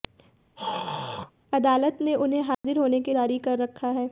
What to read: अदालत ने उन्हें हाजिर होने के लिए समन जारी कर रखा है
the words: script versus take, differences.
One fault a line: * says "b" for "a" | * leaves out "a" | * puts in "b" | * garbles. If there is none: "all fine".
* leaves out "लिए समन"